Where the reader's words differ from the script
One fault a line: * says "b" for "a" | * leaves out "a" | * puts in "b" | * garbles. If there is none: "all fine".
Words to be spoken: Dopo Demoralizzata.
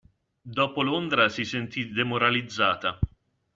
* puts in "Londra si sentì"